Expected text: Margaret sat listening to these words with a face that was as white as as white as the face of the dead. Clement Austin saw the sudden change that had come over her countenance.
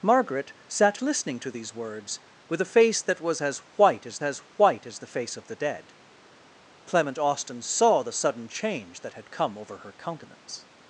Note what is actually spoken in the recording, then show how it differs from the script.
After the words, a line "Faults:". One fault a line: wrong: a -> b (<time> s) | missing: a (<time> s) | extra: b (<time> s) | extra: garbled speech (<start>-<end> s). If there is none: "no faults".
Margaret sat listening to these words with a face that was as white as as white as the face of the dead. Clement Austin saw the sudden change that had come over her countenance.
Faults:
no faults